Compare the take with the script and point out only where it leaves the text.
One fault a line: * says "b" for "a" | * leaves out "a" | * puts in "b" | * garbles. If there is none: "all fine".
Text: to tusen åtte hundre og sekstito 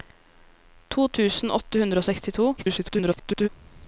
* garbles